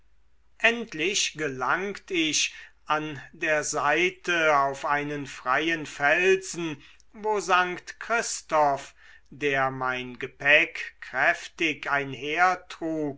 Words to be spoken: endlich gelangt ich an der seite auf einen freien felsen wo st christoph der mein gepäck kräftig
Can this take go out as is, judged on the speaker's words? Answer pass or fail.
pass